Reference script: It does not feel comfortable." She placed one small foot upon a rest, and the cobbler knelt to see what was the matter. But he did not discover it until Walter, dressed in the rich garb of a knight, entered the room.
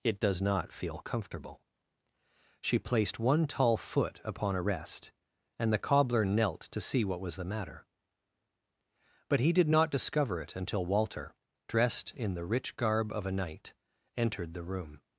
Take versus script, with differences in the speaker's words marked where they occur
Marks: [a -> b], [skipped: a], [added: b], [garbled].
It does not feel comfortable." She placed one [small -> tall] foot upon a rest, and the cobbler knelt to see what was the matter. But he did not discover it until Walter, dressed in the rich garb of a knight, entered the room.